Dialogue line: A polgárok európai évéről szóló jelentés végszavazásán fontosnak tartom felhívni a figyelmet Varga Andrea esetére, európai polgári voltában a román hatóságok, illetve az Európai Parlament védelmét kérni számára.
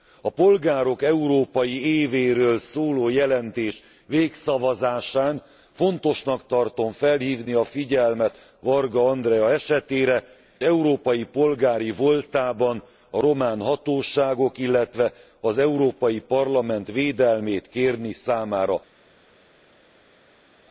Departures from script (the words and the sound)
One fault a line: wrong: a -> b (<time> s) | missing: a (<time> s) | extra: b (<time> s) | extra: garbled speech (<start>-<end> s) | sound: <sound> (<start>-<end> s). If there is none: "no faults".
no faults